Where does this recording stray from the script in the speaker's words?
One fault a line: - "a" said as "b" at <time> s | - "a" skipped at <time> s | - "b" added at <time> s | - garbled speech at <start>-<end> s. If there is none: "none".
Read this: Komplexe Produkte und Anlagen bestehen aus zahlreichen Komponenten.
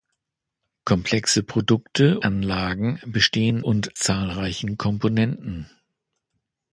- "und" skipped at 2.2 s
- "aus" said as "und" at 3.6 s